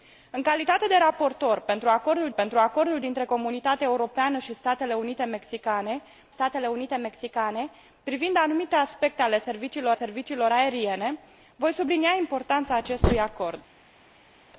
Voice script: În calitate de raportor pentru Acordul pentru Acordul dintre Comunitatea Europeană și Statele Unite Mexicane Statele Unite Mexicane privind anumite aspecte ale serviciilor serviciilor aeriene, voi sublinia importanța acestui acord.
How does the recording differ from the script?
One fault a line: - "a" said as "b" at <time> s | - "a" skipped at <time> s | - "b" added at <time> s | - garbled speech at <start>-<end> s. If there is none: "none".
none